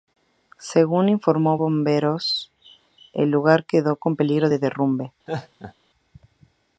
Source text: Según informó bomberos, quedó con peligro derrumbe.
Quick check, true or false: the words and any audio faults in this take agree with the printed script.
false